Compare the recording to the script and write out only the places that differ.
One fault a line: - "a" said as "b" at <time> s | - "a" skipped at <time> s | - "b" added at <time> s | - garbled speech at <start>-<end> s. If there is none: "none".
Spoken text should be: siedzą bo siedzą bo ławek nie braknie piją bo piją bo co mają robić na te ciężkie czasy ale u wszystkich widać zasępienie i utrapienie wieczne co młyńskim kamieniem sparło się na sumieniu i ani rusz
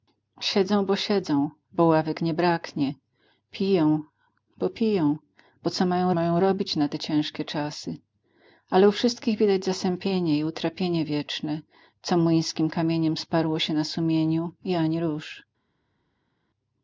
- "mają" added at 6.1 s